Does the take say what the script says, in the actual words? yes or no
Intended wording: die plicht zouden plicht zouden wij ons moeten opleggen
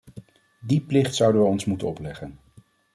no